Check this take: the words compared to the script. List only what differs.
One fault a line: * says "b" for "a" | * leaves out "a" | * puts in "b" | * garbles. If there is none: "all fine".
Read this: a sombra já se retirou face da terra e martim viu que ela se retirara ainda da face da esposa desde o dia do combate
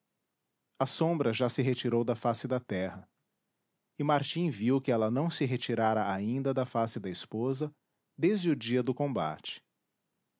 * puts in "da"
* puts in "não"